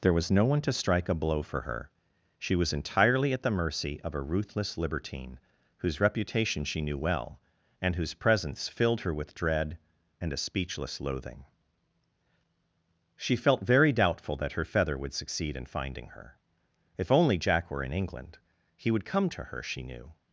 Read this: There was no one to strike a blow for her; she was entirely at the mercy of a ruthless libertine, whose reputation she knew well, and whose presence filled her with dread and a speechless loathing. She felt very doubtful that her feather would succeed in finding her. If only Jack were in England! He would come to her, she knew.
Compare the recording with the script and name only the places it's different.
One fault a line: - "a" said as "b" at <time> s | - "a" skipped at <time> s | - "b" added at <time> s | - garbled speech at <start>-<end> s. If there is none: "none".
none